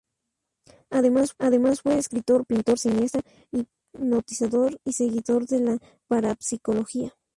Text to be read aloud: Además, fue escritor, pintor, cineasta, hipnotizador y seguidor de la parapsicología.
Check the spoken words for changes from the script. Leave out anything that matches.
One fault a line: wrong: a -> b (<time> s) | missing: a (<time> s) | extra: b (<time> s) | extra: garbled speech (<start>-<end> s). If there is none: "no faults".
extra: además (1.4 s)